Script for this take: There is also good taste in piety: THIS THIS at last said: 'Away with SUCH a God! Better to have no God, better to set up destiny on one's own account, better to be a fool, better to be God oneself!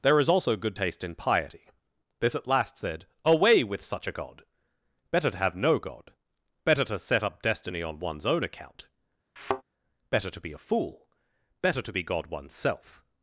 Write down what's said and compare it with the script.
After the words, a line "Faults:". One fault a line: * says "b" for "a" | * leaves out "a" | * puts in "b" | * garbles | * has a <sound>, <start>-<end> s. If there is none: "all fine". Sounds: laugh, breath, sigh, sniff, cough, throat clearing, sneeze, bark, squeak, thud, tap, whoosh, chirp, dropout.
There is also good taste in piety: THIS at last said: 'Away with SUCH a God! Better to have no God, better to set up destiny on one's own account, better to be a fool, better to be God oneself!
Faults:
* leaves out "THIS"
* has a thud, 9.4-9.6 s